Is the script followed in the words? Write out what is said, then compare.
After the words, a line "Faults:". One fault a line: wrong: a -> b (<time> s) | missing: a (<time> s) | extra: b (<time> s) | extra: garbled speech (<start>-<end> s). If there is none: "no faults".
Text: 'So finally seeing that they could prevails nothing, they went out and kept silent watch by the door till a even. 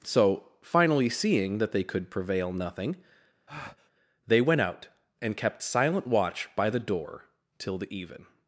'So finally seeing that they could prevail nothing, they went out and kept silent watch by the door till the even.
Faults:
wrong: prevails -> prevail (2.1 s)
wrong: a -> the (7.8 s)